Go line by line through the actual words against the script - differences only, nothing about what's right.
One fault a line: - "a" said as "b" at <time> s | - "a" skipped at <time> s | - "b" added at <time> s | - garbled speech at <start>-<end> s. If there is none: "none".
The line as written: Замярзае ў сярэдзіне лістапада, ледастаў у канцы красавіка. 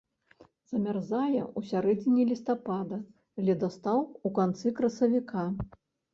none